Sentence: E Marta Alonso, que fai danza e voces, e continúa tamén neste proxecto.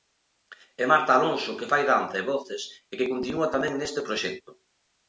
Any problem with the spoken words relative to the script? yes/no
yes